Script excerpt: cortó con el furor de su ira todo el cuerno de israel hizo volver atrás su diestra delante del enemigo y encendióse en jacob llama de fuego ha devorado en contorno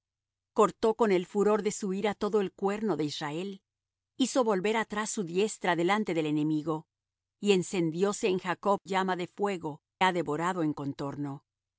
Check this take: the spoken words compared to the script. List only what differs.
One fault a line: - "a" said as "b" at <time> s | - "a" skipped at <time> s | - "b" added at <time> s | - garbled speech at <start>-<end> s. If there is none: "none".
none